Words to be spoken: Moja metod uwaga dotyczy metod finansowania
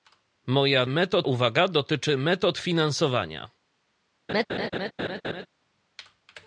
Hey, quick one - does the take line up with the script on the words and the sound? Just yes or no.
no